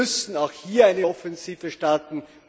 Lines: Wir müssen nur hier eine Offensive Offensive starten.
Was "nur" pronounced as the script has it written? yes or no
no